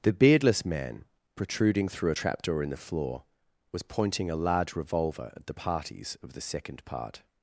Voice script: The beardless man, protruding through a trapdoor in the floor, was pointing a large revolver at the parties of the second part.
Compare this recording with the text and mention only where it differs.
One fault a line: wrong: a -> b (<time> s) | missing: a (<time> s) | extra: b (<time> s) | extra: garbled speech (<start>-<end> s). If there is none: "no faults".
no faults